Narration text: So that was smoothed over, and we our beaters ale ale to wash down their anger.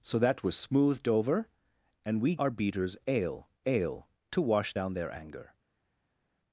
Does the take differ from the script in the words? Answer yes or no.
no